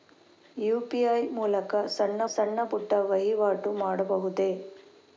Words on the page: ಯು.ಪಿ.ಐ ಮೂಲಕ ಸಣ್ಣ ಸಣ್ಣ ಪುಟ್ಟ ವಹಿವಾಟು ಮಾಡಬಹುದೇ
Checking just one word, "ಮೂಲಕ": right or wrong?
right